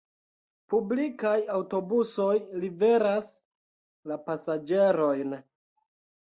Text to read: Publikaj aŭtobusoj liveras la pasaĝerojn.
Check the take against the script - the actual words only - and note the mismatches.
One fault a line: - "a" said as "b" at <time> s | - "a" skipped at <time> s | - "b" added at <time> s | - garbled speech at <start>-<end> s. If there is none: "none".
none